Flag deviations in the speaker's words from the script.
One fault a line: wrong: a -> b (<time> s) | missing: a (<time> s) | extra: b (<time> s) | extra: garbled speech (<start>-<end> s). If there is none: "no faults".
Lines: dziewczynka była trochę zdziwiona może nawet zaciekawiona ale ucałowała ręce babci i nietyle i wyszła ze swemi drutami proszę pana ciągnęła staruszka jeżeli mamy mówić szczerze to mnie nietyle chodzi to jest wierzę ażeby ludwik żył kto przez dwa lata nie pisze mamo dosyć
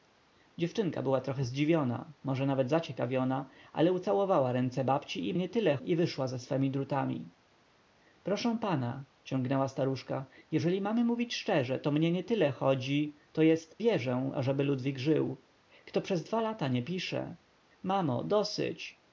no faults